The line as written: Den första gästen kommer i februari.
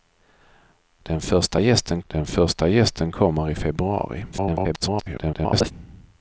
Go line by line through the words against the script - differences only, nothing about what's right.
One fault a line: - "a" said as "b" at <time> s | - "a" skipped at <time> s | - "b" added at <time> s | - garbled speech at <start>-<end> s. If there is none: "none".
- "den första gästen" added at 2.1 s
- garbled speech at 4.3-5.7 s